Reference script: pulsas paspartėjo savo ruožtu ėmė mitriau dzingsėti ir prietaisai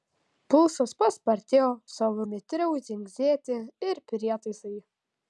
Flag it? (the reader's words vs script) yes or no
yes